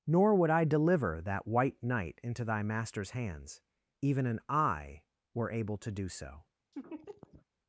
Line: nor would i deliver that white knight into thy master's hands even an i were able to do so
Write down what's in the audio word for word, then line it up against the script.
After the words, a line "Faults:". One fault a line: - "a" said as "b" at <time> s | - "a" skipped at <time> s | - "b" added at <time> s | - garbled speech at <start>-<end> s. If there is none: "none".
nor would i deliver that white knight into thy master's hands even an i were able to do so
Faults:
none